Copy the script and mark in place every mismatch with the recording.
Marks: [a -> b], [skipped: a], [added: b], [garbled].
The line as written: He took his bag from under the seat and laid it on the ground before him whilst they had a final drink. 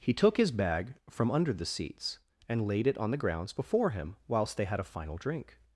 He took his bag from under the [seat -> seats] and laid it on the [ground -> grounds] before him whilst they had a final drink.